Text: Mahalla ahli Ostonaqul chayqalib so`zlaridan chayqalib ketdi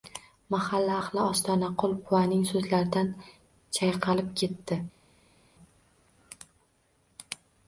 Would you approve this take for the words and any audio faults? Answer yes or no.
no